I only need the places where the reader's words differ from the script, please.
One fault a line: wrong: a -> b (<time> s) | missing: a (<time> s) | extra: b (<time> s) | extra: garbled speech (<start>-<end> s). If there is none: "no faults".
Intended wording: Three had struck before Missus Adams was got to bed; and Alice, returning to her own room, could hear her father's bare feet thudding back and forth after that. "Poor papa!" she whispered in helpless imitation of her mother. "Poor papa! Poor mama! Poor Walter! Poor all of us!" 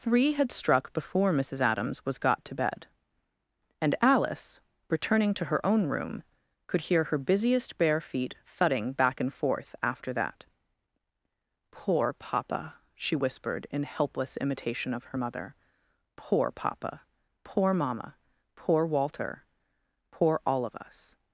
wrong: father's -> busiest (7.2 s)